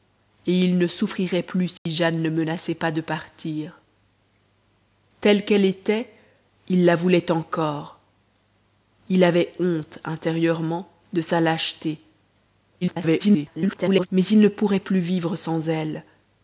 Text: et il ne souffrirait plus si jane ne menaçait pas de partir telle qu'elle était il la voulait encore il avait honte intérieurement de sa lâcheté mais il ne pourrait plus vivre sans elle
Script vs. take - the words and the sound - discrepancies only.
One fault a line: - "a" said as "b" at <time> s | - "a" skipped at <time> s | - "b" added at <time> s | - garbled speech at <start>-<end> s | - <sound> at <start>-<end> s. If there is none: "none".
- dropout at 1.8-1.9 s
- garbled speech at 12.8-14.1 s